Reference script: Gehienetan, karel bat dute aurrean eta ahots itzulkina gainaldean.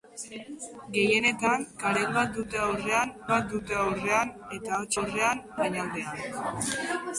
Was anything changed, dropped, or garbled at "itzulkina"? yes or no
yes